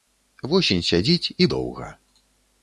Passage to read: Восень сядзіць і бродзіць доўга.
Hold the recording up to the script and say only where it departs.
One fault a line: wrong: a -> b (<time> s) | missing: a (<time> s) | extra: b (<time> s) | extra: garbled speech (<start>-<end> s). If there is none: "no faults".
missing: бродзіць (1.5 s)